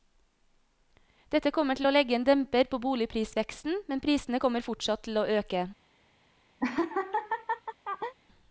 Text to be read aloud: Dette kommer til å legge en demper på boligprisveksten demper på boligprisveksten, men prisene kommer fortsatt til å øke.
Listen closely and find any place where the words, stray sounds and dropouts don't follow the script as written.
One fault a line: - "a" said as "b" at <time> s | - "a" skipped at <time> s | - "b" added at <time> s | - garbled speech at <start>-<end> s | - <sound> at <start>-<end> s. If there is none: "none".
- "demper på boligprisveksten" skipped at 3.8 s
- laugh at 6.6-8.1 s